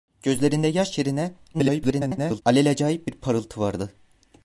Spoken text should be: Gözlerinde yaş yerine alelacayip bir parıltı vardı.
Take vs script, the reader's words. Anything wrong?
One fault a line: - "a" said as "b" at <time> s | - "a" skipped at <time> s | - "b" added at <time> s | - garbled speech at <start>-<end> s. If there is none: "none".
- garbled speech at 1.5-2.4 s